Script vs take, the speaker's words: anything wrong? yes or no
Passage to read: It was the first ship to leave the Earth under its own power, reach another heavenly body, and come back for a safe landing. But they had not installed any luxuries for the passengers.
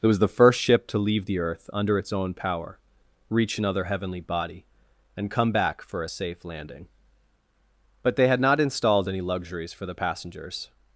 no